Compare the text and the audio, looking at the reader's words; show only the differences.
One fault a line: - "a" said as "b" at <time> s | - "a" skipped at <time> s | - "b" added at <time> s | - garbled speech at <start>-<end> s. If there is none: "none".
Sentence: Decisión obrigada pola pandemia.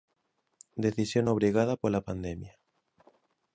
none